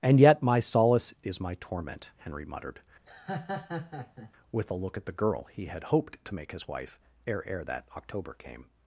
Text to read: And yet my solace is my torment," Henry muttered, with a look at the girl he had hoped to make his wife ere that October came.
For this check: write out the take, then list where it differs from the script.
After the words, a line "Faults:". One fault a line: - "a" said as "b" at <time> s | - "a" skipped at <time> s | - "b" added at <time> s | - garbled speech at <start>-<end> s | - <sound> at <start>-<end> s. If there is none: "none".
And yet my solace is my torment," Henry muttered, with a look at the girl he had hoped to make his wife ere ere that October came.
Faults:
- laugh at 3.1-4.3 s
- "ere" added at 7.5 s